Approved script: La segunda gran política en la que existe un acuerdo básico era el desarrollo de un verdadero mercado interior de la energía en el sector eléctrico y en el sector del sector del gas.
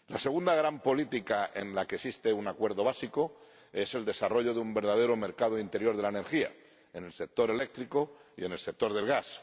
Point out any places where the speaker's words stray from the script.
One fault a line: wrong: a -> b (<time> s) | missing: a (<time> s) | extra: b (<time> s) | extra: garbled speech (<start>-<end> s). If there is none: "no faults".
wrong: era -> es (3.7 s)
missing: sector del (9.1 s)